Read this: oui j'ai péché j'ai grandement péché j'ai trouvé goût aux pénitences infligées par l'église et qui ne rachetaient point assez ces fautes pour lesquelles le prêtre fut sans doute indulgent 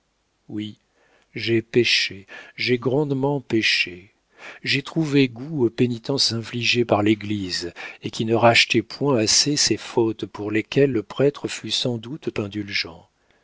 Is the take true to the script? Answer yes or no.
yes